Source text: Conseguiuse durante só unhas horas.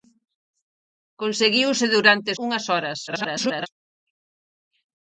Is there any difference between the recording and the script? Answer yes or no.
yes